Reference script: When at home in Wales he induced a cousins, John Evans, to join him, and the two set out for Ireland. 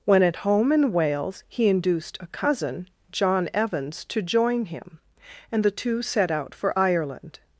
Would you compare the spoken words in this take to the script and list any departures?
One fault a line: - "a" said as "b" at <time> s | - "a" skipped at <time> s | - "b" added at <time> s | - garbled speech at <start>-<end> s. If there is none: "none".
- "cousins" said as "cousin" at 2.3 s